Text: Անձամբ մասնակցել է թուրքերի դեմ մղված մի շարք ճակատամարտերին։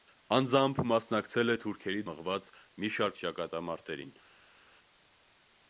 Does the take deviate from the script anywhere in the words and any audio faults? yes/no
yes